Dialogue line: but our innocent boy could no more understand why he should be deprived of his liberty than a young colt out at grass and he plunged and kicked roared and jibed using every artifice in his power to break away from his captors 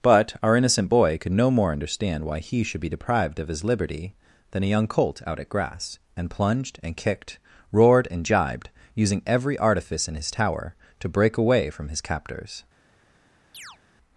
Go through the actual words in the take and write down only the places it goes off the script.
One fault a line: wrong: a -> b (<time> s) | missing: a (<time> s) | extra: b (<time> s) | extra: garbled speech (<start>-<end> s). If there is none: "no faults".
missing: he (6.3 s)
wrong: power -> tower (10.3 s)